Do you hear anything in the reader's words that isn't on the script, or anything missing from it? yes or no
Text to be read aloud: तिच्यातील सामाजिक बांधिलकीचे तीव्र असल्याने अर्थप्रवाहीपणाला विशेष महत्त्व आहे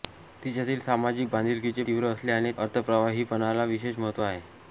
no